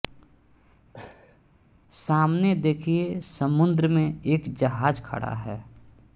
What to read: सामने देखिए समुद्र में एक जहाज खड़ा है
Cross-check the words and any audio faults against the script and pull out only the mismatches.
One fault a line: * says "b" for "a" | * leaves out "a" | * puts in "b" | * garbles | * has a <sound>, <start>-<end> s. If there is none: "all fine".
* has a laugh, 0.9-1.4 s